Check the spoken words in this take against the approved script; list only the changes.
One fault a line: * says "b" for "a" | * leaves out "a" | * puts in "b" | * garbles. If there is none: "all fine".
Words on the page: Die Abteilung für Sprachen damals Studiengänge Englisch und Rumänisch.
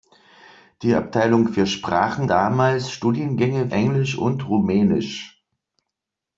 all fine